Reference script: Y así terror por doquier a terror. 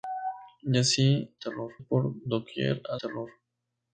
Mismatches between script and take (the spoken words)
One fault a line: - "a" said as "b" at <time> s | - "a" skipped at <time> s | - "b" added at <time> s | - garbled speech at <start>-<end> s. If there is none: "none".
none